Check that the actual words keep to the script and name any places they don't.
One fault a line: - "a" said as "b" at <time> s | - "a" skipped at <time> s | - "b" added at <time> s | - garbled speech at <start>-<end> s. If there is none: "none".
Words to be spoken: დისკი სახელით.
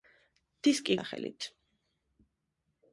none